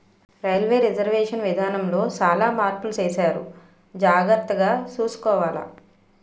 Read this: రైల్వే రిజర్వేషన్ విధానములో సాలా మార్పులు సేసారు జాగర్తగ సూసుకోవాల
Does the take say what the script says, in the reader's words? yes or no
yes